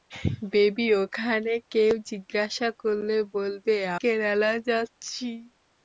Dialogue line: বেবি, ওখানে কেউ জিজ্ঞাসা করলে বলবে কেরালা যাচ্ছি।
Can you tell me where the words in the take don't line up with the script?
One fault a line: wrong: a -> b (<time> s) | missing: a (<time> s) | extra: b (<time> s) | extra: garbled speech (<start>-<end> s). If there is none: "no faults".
no faults